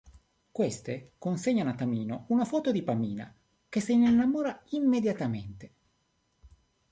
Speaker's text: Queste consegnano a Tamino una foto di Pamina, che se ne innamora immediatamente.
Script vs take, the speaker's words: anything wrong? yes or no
no